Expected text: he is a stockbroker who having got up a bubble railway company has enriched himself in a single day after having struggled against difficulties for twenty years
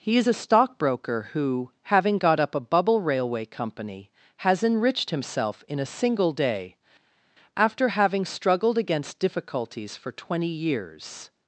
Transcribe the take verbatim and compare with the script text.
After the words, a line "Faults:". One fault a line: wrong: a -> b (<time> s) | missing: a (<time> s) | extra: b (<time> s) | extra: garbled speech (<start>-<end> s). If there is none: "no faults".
he is a stockbroker who having got up a bubble railway company has enriched himself in a single day after having struggled against difficulties for twenty years
Faults:
no faults